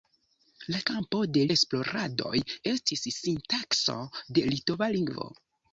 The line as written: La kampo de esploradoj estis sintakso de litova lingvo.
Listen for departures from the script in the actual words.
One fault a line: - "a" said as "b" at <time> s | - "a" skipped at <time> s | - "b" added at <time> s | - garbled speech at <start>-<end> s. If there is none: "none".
none